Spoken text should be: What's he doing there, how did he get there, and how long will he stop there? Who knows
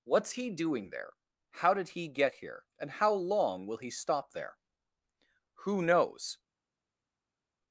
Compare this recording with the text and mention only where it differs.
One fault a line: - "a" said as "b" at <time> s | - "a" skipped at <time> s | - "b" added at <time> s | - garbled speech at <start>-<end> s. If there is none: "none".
- "there" said as "here" at 2.3 s